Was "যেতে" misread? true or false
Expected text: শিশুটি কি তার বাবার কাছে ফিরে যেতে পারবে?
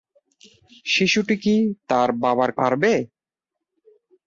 true